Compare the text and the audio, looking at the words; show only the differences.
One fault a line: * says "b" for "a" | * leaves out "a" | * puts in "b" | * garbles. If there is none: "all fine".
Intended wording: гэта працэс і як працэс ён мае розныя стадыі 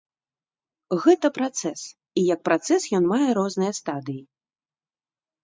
all fine